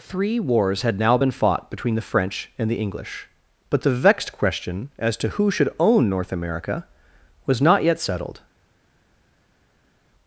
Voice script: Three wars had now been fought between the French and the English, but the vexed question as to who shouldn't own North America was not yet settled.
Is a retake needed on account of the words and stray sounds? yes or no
yes